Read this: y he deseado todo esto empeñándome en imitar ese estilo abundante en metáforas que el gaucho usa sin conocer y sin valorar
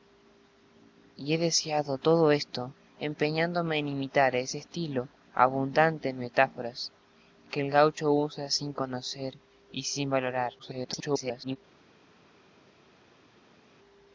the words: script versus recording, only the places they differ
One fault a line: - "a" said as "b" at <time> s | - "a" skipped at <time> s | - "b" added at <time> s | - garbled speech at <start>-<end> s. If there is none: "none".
- garbled speech at 10.6-11.6 s